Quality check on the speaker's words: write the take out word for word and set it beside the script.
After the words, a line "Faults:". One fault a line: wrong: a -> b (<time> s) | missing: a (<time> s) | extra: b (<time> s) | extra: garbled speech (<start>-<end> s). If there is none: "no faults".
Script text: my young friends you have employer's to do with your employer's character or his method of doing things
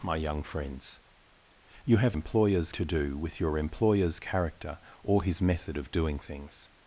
my young friends you have employer's to do with your employer's character or his method of doing things
Faults:
no faults